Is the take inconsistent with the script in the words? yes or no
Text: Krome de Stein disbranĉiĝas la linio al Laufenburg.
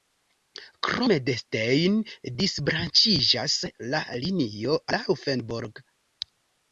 yes